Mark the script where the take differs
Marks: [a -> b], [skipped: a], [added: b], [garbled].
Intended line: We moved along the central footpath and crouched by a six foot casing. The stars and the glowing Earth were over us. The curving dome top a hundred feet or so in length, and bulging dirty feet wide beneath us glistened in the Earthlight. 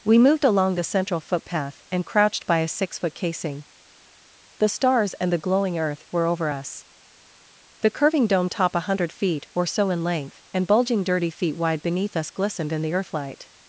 We moved along the central footpath and crouched by a six foot casing. The stars and the glowing Earth were over us. The curving dome top a hundred feet or so in length, and bulging dirty feet wide beneath us glistened in the Earthlight.